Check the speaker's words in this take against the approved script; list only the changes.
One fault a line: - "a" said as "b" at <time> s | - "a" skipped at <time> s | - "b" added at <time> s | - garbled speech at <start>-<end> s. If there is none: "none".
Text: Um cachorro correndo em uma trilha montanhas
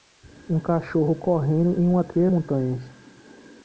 none